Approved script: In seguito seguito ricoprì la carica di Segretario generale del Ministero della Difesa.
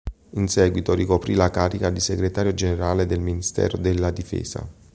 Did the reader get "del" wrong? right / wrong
right